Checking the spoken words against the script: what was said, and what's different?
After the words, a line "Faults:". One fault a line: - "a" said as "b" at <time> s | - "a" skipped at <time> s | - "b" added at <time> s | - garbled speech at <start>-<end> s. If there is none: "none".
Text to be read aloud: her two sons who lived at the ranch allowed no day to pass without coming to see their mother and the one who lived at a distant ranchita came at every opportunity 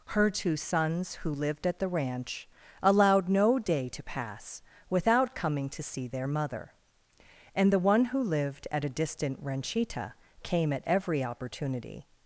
her two sons who lived at the ranch allowed no day to pass without coming to see their mother and the one who lived at a distant ranchita came at every opportunity
Faults:
none